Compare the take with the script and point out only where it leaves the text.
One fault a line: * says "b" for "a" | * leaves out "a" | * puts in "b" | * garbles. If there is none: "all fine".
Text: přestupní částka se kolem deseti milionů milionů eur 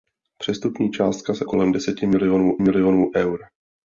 all fine